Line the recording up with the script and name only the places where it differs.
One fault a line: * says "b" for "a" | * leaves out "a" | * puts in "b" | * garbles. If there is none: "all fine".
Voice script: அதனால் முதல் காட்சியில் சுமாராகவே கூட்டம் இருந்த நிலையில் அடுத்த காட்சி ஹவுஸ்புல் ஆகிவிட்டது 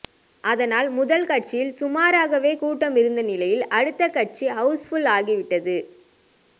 all fine